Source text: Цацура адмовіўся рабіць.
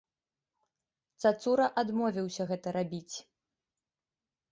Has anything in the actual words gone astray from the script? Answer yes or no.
yes